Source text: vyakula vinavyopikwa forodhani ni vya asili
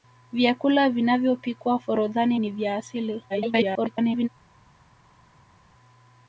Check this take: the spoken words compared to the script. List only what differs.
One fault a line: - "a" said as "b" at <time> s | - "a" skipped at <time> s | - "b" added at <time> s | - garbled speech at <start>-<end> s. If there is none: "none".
- garbled speech at 3.3-4.3 s